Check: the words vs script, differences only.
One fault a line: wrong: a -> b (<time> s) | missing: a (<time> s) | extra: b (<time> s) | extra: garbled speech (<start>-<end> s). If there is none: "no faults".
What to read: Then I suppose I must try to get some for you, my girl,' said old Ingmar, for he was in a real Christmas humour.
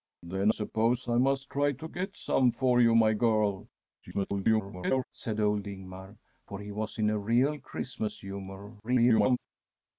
missing: I (0.5 s)
extra: garbled speech (4.0-5.0 s)
extra: garbled speech (8.8-9.4 s)